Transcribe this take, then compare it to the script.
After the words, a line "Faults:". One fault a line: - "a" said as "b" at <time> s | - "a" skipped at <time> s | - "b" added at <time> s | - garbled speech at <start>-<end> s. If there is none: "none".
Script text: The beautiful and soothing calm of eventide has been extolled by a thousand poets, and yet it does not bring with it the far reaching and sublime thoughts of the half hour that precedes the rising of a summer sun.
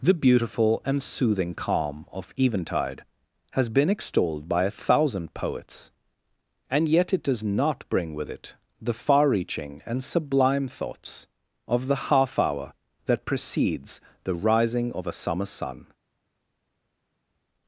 The beautiful and soothing calm of eventide has been extolled by a thousand poets, and yet it does not bring with it the far reaching and sublime thoughts of the half hour that precedes the rising of a summer sun.
Faults:
none